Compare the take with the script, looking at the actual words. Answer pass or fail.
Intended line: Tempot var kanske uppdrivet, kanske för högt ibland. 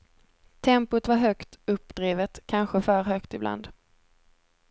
fail